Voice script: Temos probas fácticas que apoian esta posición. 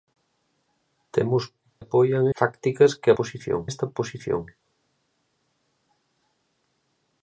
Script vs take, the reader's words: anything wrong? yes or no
yes